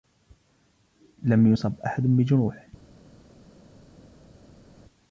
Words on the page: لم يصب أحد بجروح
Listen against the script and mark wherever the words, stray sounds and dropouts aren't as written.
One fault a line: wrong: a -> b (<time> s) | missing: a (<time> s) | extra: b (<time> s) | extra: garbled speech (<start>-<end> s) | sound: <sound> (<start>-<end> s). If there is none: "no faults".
no faults